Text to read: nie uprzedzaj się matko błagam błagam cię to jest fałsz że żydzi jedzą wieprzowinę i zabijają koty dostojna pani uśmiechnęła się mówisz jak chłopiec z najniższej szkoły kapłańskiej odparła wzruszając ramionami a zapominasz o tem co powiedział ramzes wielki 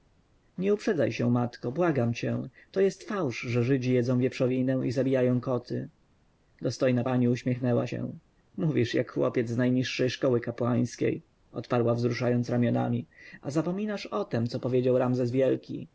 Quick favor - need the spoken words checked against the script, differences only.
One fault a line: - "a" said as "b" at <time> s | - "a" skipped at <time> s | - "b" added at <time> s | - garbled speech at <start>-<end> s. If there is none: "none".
- "błagam" skipped at 2.1 s